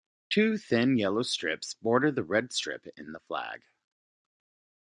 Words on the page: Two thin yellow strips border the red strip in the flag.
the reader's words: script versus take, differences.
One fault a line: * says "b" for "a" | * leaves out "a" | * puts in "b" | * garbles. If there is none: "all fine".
all fine